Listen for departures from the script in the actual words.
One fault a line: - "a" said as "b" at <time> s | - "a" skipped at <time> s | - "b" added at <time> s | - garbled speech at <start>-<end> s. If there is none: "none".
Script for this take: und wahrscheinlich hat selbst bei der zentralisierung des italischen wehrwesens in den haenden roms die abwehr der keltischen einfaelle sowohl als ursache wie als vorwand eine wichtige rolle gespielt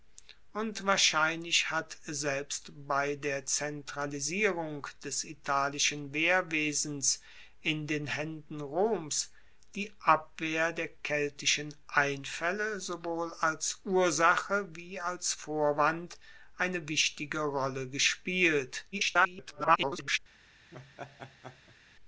- garbled speech at 18.9-20.2 s